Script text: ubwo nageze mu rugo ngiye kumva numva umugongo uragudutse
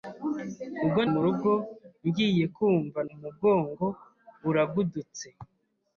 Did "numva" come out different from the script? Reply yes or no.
yes